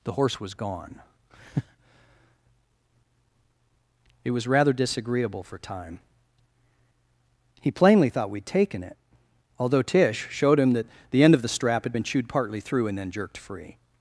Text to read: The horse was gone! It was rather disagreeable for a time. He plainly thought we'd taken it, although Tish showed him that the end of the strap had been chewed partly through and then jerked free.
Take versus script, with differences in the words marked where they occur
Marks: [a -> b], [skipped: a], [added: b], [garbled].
The horse was gone! It was rather disagreeable for [skipped: a] time. He plainly thought we'd taken it, although Tish showed him that the end of the strap had been chewed partly through and then jerked free.